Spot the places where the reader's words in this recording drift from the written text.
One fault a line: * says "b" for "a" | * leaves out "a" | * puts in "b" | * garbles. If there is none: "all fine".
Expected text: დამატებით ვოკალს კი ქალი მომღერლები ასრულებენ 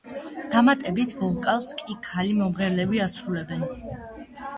all fine